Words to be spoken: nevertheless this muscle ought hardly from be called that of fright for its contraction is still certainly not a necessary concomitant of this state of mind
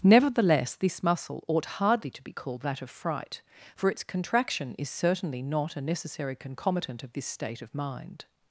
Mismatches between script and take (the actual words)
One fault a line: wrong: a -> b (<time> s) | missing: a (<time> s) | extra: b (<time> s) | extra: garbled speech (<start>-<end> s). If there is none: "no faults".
wrong: from -> to (2.1 s)
missing: still (4.9 s)